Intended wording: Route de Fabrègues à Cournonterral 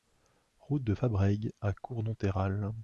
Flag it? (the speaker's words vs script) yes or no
no